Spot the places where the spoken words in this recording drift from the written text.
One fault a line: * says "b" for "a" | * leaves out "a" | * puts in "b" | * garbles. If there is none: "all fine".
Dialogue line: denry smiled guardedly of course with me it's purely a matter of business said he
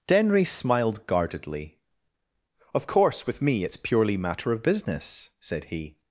* leaves out "a"